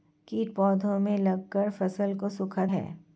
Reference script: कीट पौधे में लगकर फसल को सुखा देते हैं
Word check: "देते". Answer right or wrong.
wrong